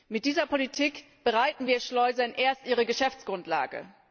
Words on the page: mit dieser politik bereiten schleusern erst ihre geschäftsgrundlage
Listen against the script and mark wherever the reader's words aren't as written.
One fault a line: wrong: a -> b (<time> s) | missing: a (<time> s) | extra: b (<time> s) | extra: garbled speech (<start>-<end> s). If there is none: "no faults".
extra: wir (1.7 s)